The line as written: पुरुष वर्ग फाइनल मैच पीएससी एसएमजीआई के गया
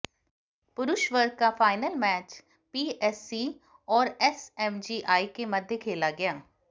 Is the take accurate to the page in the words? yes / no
no